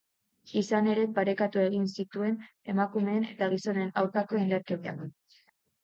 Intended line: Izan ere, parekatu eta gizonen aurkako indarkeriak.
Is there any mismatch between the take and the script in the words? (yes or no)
yes